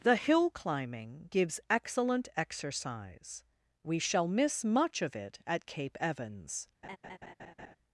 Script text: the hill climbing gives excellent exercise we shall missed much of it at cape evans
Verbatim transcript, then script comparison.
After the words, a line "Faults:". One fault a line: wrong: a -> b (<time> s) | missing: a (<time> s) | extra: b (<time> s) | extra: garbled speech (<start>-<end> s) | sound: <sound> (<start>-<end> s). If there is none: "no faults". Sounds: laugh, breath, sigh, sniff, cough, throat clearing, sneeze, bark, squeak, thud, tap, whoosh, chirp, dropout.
the hill climbing gives excellent exercise we shall miss much of it at cape evans
Faults:
wrong: missed -> miss (4.3 s)
sound: laugh (6.8-7.8 s)